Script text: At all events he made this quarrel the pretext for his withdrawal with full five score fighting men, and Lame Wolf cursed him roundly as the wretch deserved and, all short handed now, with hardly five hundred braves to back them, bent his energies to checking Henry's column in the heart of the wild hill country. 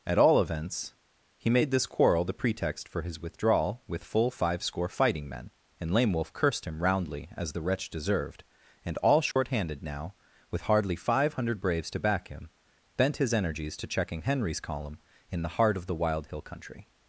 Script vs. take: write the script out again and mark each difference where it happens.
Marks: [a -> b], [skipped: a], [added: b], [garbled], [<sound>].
At all events he made this quarrel the pretext for his withdrawal with full five score fighting men, and Lame Wolf cursed him roundly as the wretch deserved and, all short [dropout] handed now, with hardly five hundred braves to back [them, -> him] bent his energies to checking Henry's column in the heart of the wild hill country.